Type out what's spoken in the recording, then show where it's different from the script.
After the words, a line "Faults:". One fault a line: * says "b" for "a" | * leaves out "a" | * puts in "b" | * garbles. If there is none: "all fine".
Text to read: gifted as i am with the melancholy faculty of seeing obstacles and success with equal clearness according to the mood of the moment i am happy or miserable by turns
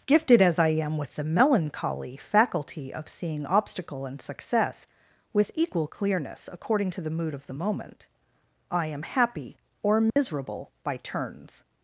gifted as i am with the melancholy faculty of seeing obstacle and success with equal clearness according to the mood of the moment i am happy or miserable by turns
Faults:
* says "obstacle" for "obstacles"